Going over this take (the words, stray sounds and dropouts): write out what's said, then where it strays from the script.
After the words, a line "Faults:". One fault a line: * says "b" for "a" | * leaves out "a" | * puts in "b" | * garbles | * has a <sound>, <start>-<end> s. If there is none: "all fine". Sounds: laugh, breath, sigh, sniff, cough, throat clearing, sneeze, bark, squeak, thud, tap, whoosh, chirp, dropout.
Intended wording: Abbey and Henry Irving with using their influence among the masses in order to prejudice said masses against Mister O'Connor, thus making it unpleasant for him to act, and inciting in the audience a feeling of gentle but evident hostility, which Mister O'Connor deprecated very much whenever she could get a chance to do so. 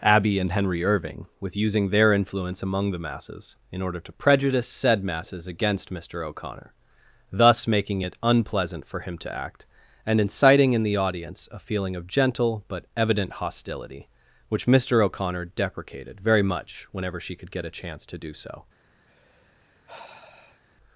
Abbey and Henry Irving with using their influence among the masses in order to prejudice said masses against Mister O'Connor, thus making it unpleasant for him to act, and inciting in the audience a feeling of gentle but evident hostility, which Mister O'Connor deprecated very much whenever she could get a chance to do so.
Faults:
* has a sigh, 19.1-20.6 s